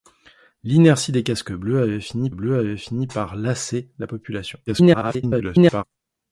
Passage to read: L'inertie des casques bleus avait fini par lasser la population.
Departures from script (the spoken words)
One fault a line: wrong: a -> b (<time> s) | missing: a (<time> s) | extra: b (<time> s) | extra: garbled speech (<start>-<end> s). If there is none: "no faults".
extra: bleus avait fini (2.3 s)
extra: garbled speech (4.7-5.8 s)